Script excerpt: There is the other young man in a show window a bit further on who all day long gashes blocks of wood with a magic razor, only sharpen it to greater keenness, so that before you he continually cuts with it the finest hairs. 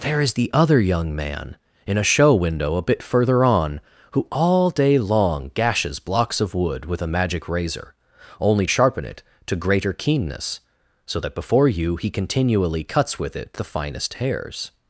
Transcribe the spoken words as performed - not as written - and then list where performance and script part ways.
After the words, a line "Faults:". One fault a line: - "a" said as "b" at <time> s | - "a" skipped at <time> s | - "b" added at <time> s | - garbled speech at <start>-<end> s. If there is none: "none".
There is the other young man in a show window a bit further on who all day long gashes blocks of wood with a magic razor, only sharpen it to greater keenness, so that before you he continually cuts with it the finest hairs.
Faults:
none